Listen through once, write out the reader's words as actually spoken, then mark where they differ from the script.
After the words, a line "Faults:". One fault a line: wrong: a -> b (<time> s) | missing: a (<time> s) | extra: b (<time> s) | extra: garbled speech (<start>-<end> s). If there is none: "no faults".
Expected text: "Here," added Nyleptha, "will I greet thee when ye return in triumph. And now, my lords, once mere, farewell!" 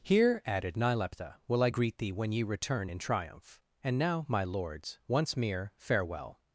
"Here," added Nyleptha, "will I greet thee when ye return in triumph. And now, my lords, once mere, farewell!"
Faults:
no faults